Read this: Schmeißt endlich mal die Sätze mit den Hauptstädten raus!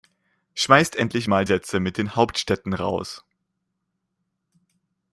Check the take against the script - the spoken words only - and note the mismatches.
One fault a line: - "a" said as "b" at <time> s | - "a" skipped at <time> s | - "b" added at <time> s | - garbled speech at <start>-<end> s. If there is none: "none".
- "die" skipped at 1.4 s